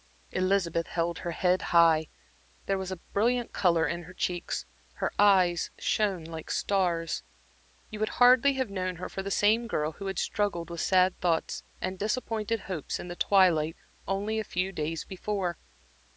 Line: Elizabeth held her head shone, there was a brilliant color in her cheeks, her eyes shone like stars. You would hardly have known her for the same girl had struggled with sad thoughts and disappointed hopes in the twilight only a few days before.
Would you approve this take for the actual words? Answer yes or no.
no